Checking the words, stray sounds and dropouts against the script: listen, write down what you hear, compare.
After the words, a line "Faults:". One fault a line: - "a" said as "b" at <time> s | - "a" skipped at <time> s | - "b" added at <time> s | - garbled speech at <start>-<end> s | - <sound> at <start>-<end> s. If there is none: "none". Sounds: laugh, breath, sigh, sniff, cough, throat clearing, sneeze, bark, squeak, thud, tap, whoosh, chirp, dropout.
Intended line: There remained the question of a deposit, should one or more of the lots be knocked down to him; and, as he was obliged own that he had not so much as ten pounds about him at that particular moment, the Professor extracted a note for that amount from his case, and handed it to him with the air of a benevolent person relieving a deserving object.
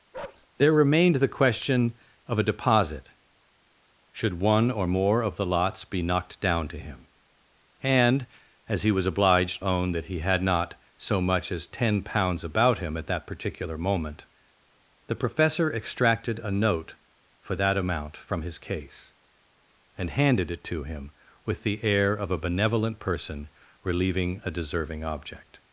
There remained the question of a deposit, should one or more of the lots be knocked down to him; and, as he was obliged own that he had not so much as ten pounds about him at that particular moment, the Professor extracted a note for that amount from his case, and handed it to him with the air of a benevolent person relieving a deserving object.
Faults:
- bark at 0.1-0.5 s